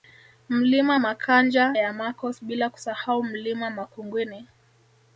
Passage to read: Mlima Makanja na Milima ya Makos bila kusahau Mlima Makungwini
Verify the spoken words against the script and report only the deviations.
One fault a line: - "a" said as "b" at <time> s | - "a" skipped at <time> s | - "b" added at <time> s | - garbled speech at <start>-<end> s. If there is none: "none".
- "na Milima" skipped at 1.8 s